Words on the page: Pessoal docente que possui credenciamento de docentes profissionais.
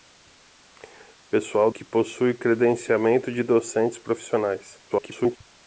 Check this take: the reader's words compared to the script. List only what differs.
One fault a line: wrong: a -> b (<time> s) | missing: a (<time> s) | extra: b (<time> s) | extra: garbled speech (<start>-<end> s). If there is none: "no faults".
missing: docente (1.7 s)
extra: garbled speech (4.9-5.4 s)